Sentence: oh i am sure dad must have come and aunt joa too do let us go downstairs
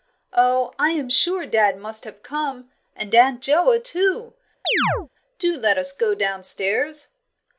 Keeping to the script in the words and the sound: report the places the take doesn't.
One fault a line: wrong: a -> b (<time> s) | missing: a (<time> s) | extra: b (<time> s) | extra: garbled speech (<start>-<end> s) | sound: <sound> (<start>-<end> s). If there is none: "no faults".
sound: chirp (4.6-5.1 s)